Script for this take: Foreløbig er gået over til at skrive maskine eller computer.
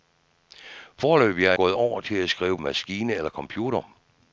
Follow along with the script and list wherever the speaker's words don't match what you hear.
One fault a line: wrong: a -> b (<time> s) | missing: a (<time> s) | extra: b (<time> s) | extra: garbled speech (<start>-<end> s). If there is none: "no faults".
no faults